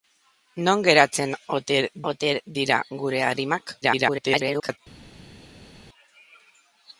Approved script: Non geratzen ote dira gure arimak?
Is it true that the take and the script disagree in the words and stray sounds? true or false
true